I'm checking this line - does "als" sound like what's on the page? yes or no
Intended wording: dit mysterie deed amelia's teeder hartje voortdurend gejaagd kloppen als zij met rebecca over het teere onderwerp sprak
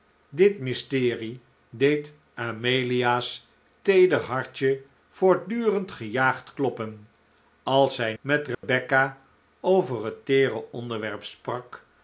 yes